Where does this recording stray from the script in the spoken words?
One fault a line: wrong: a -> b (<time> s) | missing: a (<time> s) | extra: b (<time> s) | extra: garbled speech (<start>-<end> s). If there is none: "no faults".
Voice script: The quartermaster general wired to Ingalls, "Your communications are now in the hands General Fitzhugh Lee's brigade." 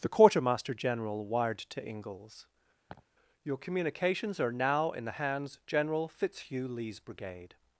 no faults